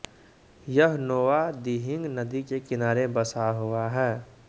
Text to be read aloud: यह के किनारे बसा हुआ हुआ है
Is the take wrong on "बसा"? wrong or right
right